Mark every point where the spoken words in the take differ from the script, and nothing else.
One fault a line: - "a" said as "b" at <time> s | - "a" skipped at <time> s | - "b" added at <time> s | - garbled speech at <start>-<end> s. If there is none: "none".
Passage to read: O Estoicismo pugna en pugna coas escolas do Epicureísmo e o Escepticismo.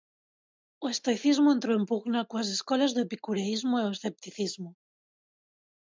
- "pugna" said as "entrou" at 1.6 s